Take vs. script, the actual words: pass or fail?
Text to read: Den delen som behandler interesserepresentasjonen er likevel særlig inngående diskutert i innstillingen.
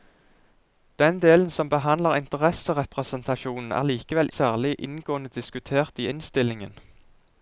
pass